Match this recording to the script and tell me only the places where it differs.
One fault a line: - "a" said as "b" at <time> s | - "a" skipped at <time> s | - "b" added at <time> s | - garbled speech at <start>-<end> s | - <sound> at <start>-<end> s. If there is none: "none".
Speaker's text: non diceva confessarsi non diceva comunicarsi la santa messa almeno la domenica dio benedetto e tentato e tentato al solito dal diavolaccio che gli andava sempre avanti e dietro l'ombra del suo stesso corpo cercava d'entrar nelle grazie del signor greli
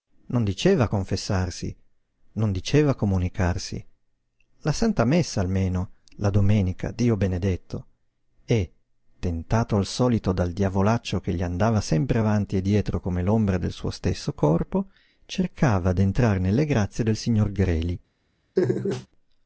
- "e tentato" skipped at 9.7 s
- "come" added at 13.0 s
- laugh at 18.6-19.1 s